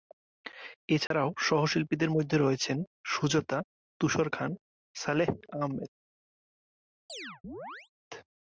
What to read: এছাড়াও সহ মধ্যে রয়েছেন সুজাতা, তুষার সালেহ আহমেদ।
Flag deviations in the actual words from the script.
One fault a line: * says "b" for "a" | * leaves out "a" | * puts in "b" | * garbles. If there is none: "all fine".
* puts in "শিল্পীদের"
* puts in "খান"